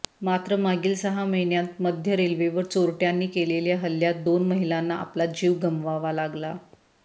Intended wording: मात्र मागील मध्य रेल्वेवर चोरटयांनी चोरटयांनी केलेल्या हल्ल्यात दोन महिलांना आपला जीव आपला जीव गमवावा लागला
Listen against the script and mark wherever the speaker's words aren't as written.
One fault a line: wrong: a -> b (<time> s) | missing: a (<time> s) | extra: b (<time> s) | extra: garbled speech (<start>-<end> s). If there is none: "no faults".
extra: सहा महिन्यांत (0.9 s)
missing: चोरटयांनी (3.3 s)
missing: आपला जीव (5.5 s)